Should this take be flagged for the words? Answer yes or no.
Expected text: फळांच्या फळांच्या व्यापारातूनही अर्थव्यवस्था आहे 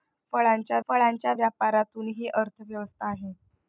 no